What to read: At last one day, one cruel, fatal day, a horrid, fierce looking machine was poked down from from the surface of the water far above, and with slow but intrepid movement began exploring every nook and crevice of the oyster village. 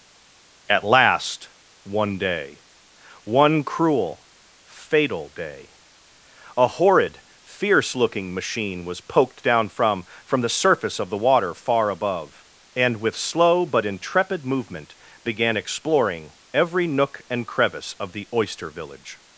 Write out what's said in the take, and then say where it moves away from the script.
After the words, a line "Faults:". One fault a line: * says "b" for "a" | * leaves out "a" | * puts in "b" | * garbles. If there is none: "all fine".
At last one day, one cruel, fatal day, a horrid, fierce looking machine was poked down from from the surface of the water far above, and with slow but intrepid movement began exploring every nook and crevice of the oyster village.
Faults:
all fine